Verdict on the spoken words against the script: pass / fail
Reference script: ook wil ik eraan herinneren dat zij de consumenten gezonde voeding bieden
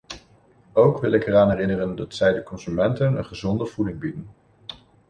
fail